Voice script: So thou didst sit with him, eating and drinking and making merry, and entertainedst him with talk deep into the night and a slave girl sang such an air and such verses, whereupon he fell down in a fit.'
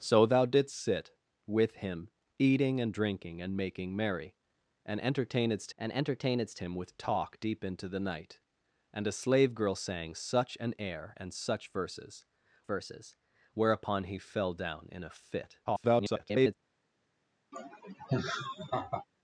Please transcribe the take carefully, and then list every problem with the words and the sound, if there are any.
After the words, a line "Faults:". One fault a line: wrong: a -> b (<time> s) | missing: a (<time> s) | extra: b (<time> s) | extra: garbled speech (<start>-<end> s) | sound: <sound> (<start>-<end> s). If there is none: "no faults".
So thou didst sit with him, eating and drinking and making merry, and entertainedst and entertainedst him with talk deep into the night and a slave girl sang such an air and such verses verses, whereupon he fell down in a fit.' [garbled]
Faults:
extra: and entertainedst (5.8 s)
extra: verses (12.7 s)
extra: garbled speech (15.7-16.5 s)
sound: laugh (17.5-19.1 s)